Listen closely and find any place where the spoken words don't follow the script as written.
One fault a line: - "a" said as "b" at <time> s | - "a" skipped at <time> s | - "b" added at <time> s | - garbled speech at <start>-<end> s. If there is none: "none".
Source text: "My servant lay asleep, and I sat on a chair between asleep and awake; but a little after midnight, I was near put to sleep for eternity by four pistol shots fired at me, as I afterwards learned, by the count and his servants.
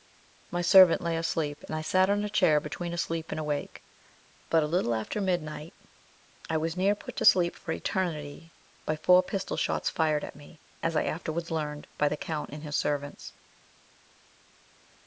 none